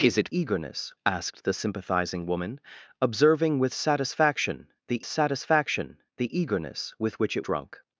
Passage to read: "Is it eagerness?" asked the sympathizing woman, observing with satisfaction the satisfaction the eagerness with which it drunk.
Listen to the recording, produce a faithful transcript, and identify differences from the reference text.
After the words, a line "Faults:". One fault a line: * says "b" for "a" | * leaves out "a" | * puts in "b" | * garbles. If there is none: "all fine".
"Is it eagerness?" asked the sympathizing woman, observing with satisfaction the satisfaction the eagerness with which it drunk.
Faults:
all fine